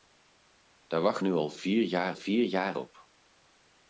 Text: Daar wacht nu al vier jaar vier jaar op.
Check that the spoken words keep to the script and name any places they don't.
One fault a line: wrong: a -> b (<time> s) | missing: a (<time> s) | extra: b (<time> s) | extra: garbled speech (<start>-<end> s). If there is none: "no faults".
no faults